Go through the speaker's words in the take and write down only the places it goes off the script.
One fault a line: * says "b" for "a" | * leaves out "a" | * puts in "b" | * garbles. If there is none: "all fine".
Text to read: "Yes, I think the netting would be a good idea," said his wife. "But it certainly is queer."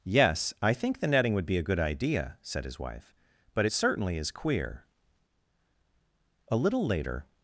* puts in "A little later"